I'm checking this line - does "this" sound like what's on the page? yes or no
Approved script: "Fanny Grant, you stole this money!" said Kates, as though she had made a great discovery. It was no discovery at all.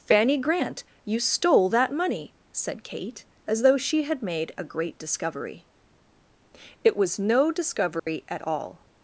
no